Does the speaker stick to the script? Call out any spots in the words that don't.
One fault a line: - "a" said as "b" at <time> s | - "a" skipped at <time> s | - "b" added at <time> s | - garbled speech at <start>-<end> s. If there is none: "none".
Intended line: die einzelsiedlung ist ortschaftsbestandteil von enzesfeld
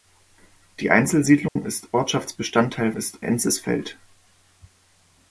- "von" said as "ist" at 2.9 s